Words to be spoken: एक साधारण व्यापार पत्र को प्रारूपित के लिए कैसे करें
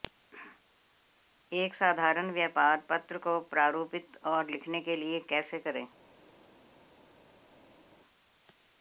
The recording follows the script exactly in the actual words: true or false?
false